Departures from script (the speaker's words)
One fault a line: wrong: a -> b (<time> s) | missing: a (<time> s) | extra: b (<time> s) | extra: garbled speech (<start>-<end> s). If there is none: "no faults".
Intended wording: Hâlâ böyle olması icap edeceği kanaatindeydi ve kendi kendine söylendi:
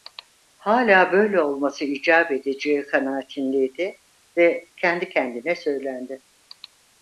no faults